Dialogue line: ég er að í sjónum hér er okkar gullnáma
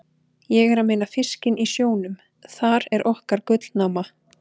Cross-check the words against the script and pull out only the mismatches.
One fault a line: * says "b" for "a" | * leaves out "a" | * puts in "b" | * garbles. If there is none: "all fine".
* puts in "meina fiskinn"
* says "þar" for "hér"